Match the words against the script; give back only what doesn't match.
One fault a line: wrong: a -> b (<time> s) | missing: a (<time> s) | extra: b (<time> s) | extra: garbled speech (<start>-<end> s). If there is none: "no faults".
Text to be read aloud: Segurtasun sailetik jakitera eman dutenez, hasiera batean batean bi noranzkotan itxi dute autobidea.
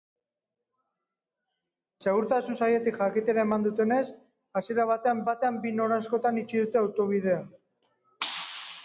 no faults